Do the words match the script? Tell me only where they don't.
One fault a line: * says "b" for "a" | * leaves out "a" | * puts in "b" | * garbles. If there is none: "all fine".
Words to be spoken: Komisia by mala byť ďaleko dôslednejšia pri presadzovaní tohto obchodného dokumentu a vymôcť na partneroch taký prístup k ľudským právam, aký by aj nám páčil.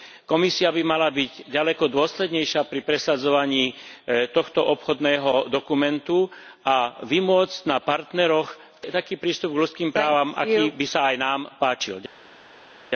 * puts in "sa"